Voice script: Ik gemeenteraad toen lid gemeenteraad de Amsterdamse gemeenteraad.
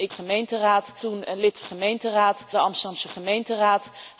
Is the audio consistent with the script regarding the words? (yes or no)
yes